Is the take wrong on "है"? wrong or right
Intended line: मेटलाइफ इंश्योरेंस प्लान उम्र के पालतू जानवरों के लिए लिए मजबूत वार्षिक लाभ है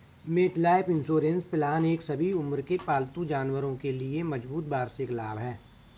right